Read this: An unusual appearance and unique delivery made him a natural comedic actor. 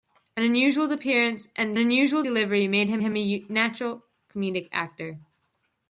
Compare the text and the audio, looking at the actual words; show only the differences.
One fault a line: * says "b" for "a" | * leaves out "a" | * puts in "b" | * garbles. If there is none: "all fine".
* says "unusual" for "unique"
* puts in "him"